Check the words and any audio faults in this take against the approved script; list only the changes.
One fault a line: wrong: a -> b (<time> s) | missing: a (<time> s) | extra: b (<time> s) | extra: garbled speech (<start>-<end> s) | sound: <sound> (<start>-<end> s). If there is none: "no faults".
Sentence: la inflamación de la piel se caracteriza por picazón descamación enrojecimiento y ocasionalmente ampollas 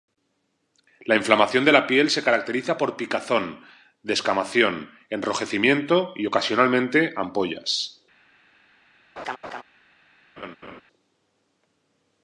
sound: laugh (9.2-9.6 s)
sound: laugh (10.4-10.8 s)